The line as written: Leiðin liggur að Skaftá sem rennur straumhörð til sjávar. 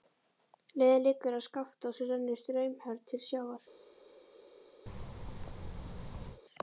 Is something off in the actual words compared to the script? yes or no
no